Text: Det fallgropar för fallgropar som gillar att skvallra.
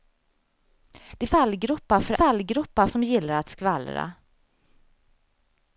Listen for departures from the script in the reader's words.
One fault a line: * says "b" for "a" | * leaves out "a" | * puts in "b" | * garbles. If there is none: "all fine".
all fine